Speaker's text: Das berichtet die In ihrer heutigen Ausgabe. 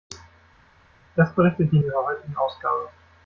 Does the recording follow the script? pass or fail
pass